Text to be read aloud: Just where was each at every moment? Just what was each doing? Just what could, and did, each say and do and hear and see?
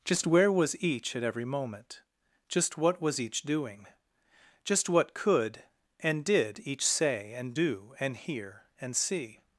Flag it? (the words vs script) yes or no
no